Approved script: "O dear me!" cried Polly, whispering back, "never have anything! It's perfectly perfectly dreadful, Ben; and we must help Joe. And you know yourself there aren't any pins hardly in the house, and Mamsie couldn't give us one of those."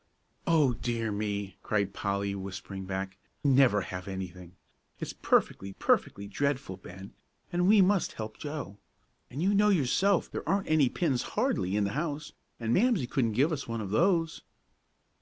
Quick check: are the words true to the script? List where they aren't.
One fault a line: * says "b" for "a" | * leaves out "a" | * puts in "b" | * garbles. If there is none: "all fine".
all fine